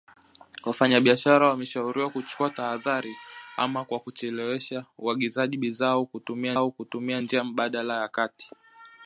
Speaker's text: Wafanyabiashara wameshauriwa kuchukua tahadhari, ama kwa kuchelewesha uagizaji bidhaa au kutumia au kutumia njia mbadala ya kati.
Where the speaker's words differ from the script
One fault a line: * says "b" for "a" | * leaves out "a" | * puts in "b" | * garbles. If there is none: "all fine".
all fine